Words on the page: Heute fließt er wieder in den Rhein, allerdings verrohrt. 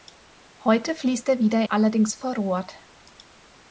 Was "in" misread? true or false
true